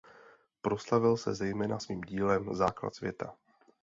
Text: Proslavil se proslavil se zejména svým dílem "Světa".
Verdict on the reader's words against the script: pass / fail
fail